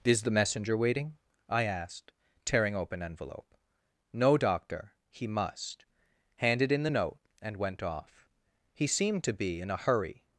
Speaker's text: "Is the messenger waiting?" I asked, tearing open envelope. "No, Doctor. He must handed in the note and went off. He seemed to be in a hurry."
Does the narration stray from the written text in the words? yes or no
no